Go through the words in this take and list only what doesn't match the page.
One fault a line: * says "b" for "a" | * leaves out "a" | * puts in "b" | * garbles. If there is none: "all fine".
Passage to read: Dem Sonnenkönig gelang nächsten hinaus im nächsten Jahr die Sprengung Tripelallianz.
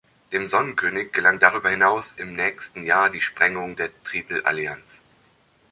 * says "darüber" for "nächsten"
* puts in "der"